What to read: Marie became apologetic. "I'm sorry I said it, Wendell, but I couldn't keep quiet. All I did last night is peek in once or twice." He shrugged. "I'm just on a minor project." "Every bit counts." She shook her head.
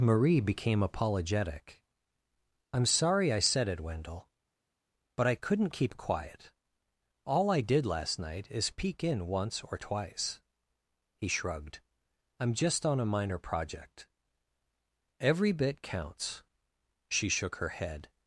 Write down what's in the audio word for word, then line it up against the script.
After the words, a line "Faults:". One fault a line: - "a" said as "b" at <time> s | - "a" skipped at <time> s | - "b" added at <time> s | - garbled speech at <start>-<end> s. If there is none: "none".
Marie became apologetic. "I'm sorry I said it, Wendell, but I couldn't keep quiet. All I did last night is peek in once or twice." He shrugged. "I'm just on a minor project." "Every bit counts." She shook her head.
Faults:
none